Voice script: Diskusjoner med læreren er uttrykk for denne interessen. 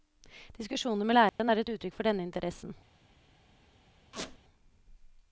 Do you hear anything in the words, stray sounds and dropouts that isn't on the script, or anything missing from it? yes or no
yes